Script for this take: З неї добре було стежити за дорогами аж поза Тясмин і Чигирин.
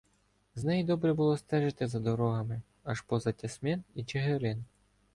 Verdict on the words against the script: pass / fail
pass